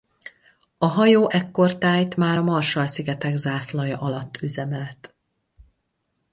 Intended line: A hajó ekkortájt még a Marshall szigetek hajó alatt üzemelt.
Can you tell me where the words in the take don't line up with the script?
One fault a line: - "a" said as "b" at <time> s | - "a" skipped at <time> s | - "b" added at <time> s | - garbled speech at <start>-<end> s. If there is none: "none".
- "még" said as "már" at 2.1 s
- "hajó" said as "zászlaja" at 3.4 s